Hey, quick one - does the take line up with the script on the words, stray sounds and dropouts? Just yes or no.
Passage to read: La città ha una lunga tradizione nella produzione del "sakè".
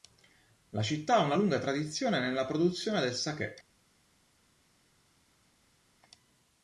yes